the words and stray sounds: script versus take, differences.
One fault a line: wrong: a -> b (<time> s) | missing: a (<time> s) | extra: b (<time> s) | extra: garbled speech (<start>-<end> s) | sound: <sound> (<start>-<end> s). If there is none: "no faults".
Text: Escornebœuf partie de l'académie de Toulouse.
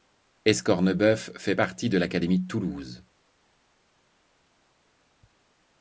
extra: fait (1.4 s)